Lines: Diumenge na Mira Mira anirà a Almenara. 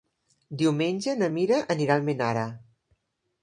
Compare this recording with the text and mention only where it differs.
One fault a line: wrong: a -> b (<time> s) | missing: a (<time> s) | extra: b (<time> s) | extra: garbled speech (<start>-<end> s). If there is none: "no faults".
missing: Mira (1.6 s)